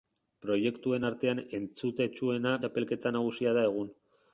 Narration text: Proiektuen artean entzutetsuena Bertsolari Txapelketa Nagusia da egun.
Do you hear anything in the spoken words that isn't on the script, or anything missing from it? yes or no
yes